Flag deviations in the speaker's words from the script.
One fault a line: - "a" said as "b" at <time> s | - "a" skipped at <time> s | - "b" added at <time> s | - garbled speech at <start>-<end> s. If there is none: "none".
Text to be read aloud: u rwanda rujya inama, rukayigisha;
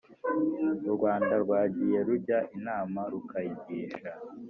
- "rwagiye" added at 1.4 s